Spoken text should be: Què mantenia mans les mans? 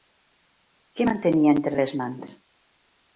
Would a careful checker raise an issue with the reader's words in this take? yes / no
yes